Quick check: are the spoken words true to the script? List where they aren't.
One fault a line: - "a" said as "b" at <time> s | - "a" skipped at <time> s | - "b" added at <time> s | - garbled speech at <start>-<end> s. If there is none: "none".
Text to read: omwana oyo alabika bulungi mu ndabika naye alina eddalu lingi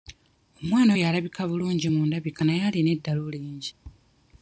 none